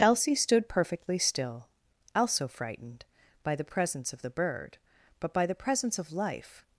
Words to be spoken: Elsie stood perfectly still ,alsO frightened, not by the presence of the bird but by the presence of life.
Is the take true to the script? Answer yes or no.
no